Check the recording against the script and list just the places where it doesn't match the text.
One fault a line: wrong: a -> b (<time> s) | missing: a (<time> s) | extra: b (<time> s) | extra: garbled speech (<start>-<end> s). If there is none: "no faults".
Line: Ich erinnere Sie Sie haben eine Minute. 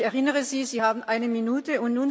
no faults